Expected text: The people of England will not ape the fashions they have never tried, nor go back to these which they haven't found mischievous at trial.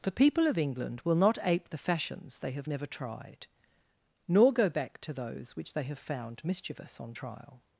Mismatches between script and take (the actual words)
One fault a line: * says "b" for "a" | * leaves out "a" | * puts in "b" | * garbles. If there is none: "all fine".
* says "those" for "these"
* says "have" for "haven't"
* says "on" for "at"